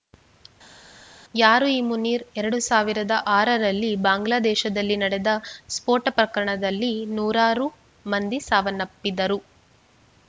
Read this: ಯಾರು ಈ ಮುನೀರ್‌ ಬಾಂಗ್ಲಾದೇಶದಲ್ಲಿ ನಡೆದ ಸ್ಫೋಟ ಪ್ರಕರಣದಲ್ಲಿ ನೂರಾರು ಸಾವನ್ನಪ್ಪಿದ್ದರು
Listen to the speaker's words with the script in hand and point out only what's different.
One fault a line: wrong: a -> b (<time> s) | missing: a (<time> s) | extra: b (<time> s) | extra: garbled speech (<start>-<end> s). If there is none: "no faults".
extra: ಎರಡು ಸಾವಿರದ ಆರರಲ್ಲಿ (2.4 s)
extra: ಮಂದಿ (8.1 s)